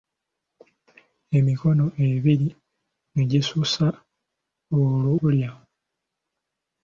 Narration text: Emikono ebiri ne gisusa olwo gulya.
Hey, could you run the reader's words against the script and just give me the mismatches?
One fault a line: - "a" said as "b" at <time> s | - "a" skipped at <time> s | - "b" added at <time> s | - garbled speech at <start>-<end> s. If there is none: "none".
none